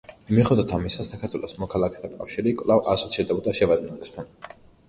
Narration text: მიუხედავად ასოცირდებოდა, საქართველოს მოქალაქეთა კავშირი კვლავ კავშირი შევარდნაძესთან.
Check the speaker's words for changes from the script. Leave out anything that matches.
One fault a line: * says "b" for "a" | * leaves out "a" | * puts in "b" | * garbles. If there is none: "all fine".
* says "ამისა" for "ასოცირდებოდა"
* says "ასოცირდებოდა" for "კავშირი"